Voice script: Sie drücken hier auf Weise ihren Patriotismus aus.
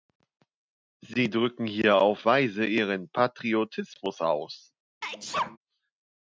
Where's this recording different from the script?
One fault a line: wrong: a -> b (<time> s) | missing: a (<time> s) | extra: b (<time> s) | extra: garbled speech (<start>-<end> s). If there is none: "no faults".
no faults